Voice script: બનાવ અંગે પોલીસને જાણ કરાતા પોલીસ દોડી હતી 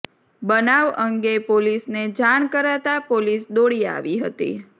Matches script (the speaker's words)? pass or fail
fail